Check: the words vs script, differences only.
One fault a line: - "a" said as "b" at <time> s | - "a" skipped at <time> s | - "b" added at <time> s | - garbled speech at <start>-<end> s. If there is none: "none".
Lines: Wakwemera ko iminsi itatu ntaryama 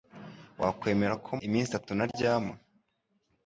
none